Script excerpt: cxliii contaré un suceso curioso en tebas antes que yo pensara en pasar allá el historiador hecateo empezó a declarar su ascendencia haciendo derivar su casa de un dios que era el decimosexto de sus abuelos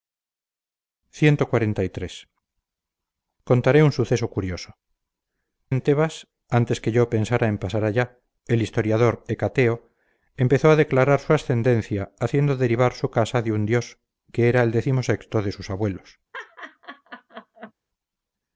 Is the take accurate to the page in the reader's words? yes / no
yes